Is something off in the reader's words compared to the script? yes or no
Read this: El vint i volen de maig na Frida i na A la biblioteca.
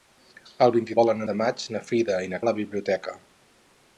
no